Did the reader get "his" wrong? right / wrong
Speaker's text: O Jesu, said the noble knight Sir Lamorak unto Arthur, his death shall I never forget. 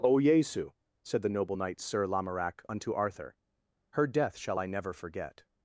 wrong